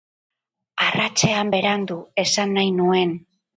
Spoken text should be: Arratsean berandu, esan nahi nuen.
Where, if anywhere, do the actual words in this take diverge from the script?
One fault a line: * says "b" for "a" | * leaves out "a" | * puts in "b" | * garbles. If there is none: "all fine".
all fine